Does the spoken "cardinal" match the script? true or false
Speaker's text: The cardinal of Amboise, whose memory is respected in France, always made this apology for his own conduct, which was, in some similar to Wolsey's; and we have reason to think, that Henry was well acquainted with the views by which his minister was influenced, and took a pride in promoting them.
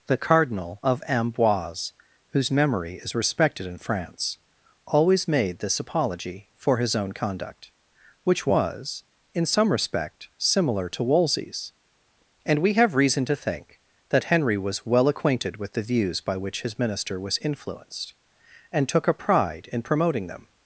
true